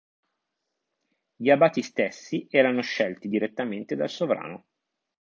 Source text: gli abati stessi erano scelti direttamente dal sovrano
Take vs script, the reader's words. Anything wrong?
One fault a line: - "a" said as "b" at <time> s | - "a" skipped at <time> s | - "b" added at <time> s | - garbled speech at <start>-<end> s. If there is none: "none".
none